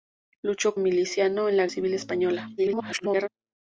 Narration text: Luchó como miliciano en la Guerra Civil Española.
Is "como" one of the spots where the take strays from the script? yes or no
yes